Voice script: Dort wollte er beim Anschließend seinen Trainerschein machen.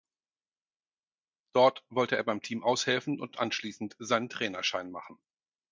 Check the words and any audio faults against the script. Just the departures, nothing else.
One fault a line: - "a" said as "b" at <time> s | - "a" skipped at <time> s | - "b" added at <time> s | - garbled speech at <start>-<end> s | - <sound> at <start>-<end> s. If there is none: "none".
- "Team aushelfen und" added at 2.4 s